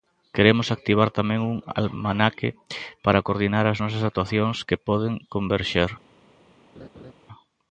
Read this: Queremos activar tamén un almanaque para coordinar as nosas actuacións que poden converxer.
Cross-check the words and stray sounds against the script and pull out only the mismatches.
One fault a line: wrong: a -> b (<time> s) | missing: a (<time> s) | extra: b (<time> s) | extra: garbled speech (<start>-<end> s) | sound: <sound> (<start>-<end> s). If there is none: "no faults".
sound: laugh (6.7-7.1 s)